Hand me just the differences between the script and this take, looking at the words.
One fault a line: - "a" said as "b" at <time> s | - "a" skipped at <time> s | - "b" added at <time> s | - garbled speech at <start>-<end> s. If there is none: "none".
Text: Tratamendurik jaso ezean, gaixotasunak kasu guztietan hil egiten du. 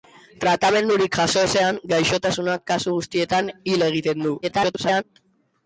- garbled speech at 4.4-5.0 s